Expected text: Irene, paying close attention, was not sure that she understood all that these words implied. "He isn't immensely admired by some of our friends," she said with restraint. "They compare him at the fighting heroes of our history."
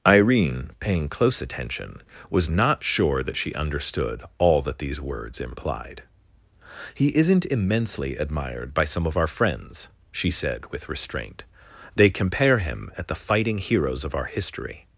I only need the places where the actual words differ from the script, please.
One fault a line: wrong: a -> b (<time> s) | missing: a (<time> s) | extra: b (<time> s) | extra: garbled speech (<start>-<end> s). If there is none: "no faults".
no faults